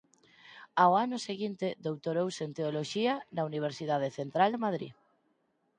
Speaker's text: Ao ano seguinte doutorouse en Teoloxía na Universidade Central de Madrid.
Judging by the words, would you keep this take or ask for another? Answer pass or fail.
pass